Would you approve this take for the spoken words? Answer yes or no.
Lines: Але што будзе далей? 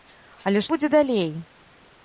no